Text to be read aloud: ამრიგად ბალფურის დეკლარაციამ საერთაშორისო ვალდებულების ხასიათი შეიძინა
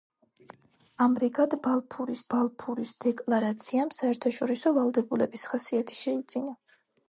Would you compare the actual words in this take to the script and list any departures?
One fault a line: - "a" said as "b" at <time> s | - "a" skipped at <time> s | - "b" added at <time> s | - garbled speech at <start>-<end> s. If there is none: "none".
- "ბალფურის" added at 2.3 s